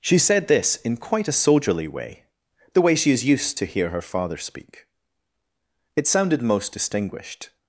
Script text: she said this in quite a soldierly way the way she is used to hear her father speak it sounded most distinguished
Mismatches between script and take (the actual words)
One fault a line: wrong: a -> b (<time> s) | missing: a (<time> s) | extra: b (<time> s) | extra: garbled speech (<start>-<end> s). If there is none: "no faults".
no faults